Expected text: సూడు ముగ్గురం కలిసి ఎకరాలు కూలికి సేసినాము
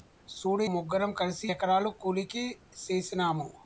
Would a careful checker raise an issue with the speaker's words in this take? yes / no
no